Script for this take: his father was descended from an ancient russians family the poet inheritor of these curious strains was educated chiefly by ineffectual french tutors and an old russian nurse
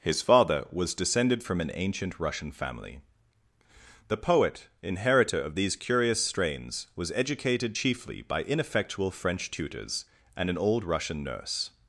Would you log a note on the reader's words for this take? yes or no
yes